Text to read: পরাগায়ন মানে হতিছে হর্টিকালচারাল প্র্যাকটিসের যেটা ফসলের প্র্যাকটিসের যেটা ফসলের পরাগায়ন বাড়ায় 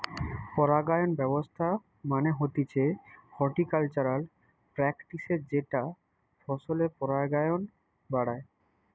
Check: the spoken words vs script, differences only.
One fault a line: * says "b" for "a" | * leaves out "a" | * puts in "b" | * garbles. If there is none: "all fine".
* puts in "ব্যবস্থা"
* leaves out "প্র্যাকটিসের যেটা ফসলের"